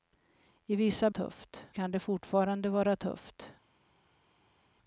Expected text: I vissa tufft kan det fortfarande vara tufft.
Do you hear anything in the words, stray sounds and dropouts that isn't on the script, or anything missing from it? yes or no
no